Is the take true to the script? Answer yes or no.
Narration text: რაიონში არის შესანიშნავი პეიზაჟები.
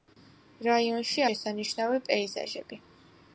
no